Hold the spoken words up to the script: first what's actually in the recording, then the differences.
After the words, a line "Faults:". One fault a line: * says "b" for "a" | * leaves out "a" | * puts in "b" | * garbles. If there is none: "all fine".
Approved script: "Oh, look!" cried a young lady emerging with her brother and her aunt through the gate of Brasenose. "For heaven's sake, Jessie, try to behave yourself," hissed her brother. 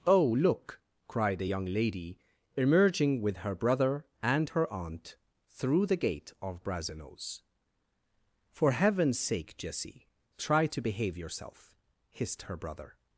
"Oh, look!" cried a young lady emerging with her brother and her aunt through the gate of Brasenose. "For heaven's sake, Jessie, try to behave yourself," hissed her brother.
Faults:
all fine